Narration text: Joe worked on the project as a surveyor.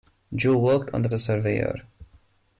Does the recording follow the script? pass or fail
fail